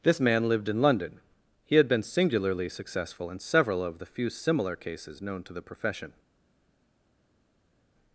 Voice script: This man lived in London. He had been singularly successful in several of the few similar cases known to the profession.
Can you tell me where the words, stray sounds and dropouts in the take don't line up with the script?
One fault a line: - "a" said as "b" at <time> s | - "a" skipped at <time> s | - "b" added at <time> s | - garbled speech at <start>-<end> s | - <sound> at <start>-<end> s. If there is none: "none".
none